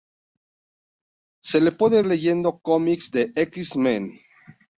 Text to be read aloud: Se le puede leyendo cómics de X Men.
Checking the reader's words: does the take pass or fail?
pass